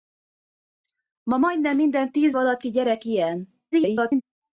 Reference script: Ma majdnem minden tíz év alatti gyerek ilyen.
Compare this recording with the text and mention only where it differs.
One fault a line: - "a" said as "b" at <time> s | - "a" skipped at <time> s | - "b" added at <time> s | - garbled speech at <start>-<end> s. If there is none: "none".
- "év" skipped at 2.4 s
- garbled speech at 3.7-4.2 s